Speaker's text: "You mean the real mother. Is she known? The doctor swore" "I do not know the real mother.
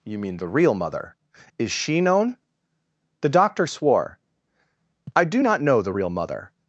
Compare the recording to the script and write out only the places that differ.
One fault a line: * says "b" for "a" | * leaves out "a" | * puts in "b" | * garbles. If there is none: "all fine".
all fine